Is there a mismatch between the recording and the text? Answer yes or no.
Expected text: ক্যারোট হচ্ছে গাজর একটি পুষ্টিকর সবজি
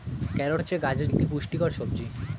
no